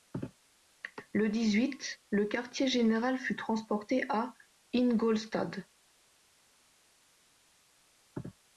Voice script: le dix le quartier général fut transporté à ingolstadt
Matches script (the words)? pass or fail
fail